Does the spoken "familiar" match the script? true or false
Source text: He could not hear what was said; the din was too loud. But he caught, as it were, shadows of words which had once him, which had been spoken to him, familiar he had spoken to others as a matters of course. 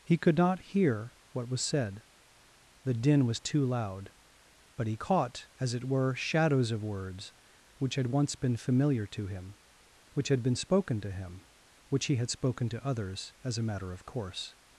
false